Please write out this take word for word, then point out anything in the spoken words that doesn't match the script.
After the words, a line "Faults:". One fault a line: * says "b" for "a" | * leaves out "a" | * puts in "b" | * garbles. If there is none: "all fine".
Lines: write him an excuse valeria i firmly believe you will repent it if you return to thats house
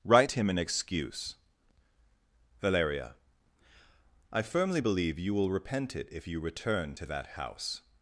write him an excuse valeria i firmly believe you will repent it if you return to that house
Faults:
* says "that" for "thats"